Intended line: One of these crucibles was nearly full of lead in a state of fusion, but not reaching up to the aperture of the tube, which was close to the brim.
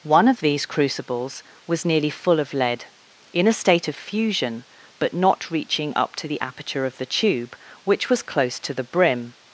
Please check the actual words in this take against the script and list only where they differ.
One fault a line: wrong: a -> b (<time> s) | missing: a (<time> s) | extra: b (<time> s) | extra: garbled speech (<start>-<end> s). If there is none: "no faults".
no faults